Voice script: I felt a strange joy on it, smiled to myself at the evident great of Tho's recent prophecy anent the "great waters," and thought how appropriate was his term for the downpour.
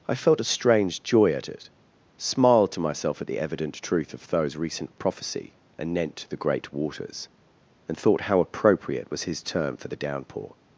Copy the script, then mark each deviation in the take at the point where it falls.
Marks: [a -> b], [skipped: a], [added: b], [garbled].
I felt a strange joy [on -> at] it, smiled to myself at the evident [great -> truth] of Tho's recent prophecy anent the "great waters," and thought how appropriate was his term for the downpour.